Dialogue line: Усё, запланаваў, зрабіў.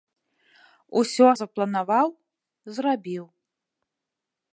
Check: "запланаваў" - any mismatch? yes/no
no